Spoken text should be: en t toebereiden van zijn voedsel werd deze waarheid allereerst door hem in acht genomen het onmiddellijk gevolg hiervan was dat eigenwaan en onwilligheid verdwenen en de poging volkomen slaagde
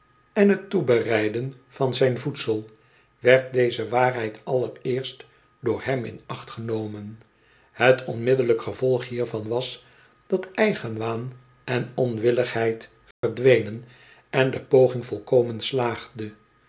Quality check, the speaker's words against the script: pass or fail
pass